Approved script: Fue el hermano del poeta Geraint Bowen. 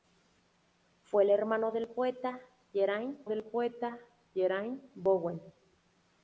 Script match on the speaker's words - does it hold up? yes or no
no